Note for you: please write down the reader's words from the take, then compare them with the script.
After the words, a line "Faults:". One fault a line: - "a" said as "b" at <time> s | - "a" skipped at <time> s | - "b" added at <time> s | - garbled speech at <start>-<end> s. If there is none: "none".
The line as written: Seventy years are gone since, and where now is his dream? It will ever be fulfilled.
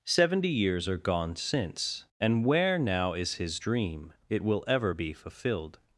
Seventy years are gone since, and where now is his dream? It will ever be fulfilled.
Faults:
none